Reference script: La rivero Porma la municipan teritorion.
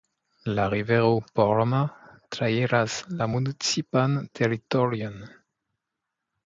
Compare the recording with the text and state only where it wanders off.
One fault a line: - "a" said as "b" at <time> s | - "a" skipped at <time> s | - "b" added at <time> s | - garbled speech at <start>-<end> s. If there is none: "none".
- "trairas" added at 2.4 s